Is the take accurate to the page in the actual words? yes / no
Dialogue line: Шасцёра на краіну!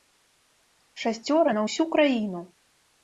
no